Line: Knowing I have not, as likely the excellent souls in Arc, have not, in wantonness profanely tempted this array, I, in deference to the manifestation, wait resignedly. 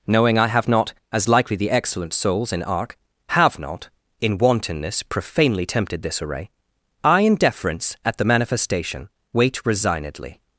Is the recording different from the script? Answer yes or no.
yes